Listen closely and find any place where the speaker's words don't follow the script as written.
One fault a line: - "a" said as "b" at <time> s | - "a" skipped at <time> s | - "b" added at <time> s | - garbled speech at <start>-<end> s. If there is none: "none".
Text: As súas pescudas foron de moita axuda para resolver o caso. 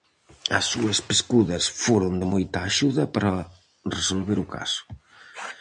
none